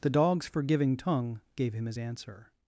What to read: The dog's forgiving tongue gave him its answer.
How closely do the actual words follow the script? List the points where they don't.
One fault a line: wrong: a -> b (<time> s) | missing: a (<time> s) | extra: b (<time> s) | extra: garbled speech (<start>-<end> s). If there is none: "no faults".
wrong: its -> his (1.9 s)